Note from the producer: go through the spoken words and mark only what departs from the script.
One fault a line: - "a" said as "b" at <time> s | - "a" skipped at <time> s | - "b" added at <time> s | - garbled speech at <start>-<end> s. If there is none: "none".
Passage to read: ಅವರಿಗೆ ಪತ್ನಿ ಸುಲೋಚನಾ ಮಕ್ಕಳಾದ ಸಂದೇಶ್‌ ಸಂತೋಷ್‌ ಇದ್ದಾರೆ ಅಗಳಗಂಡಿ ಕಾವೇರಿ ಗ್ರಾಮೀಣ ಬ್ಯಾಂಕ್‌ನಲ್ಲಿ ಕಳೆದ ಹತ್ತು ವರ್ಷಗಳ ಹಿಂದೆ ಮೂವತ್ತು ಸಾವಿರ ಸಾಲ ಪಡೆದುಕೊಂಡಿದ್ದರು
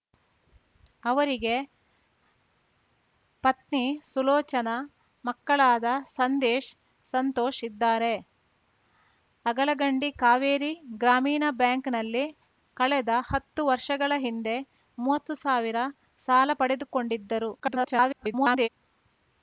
- garbled speech at 17.6-18.7 s